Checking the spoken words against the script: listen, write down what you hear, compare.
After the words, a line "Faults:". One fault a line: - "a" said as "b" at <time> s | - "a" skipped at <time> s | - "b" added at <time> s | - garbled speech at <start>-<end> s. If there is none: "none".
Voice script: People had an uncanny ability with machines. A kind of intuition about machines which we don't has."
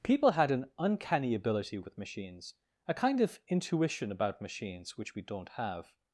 People had an uncanny ability with machines. A kind of intuition about machines which we don't have."
Faults:
- "has" said as "have" at 5.5 s